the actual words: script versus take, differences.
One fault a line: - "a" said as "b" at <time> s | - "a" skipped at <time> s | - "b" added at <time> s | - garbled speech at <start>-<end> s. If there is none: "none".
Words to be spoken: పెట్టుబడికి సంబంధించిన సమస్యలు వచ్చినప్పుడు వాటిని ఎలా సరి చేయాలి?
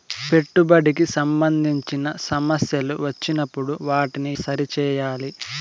- "ఎలా" skipped at 4.3 s